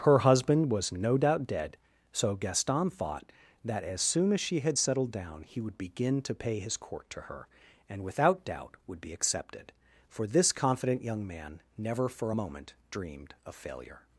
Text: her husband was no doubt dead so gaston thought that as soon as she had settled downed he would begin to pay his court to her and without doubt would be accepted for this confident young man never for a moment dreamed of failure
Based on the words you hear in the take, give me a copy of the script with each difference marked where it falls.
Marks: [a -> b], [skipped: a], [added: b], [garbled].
her husband was no doubt dead so gaston thought that as soon as she had settled [downed -> down] he would begin to pay his court to her and without doubt would be accepted for this confident young man never for a moment dreamed of failure